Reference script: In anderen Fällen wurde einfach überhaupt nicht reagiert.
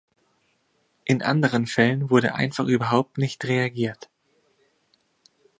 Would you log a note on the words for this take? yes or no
no